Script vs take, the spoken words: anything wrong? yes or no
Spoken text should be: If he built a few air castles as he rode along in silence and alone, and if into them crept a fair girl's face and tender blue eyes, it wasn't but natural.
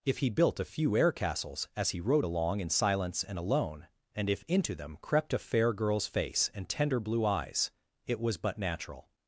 yes